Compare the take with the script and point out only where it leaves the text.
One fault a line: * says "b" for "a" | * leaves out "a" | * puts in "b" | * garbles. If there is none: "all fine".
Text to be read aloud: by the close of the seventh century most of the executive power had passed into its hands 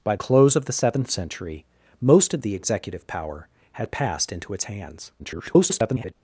* leaves out "the"
* garbles